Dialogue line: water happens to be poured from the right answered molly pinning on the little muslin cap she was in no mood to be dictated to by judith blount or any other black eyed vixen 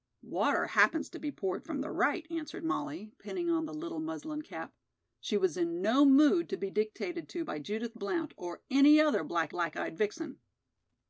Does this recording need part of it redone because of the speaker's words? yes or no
yes